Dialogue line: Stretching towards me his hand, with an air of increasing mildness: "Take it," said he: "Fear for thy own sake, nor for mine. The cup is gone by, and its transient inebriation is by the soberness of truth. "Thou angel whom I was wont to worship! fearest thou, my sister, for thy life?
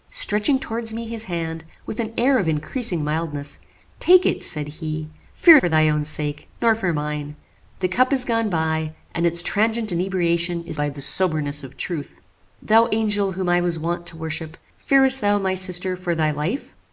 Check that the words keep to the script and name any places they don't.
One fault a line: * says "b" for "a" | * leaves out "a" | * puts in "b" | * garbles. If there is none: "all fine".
all fine